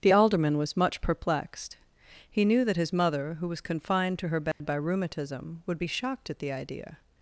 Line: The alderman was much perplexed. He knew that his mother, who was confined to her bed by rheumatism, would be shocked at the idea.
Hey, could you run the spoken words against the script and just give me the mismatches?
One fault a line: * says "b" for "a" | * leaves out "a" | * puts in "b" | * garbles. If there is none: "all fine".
all fine